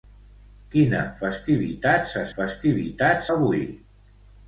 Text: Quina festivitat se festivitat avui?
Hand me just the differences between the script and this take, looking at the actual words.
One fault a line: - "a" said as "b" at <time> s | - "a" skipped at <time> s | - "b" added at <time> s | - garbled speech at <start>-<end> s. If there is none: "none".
none